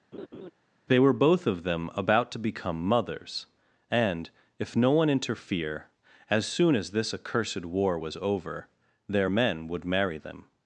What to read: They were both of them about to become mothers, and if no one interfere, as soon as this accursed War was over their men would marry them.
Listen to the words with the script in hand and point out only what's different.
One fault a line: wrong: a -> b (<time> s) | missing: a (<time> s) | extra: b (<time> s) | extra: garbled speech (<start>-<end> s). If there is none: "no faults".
no faults